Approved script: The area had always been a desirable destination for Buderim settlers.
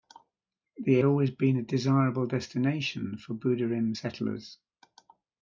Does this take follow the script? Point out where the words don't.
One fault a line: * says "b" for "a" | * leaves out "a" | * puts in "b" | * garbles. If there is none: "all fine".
* leaves out "area had"